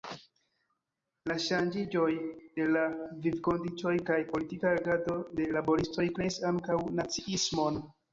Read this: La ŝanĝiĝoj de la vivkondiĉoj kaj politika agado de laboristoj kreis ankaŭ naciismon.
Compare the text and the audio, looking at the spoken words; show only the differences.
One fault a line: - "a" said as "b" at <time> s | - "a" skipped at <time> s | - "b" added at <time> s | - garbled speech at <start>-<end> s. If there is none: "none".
none